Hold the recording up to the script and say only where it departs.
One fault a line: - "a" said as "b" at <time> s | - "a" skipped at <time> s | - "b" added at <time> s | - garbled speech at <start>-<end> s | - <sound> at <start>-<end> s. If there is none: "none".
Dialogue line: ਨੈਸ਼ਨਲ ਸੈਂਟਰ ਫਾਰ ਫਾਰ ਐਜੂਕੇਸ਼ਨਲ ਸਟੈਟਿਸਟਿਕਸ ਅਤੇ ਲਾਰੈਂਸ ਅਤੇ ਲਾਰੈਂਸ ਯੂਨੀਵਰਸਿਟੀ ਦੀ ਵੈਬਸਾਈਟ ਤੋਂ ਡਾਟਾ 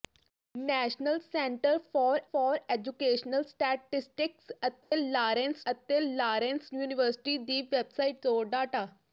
- dropout at 4.8-4.9 s